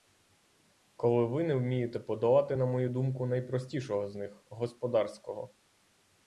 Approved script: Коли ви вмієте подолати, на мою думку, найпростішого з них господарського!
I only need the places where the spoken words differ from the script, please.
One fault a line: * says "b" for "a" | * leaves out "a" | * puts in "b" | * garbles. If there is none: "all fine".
* puts in "не"